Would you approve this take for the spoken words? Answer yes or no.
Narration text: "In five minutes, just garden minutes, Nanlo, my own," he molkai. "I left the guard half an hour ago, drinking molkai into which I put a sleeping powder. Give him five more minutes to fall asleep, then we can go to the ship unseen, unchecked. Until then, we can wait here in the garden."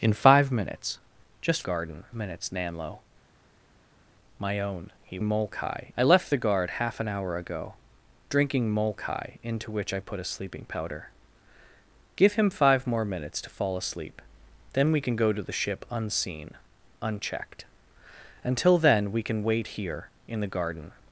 yes